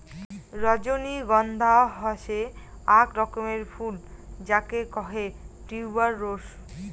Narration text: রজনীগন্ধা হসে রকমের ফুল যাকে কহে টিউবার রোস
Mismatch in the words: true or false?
true